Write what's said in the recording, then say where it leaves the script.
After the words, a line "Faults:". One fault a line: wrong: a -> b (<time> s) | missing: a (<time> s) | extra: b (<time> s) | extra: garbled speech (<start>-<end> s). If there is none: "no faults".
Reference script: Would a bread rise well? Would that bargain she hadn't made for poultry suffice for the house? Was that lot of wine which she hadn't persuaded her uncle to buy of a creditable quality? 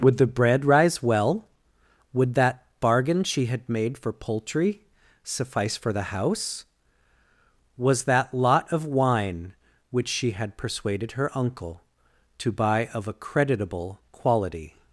Would the bread rise well? Would that bargain she had made for poultry suffice for the house? Was that lot of wine which she had persuaded her uncle to buy of a creditable quality?
Faults:
wrong: a -> the (0.2 s)
wrong: hadn't -> had (3.5 s)
wrong: hadn't -> had (10.3 s)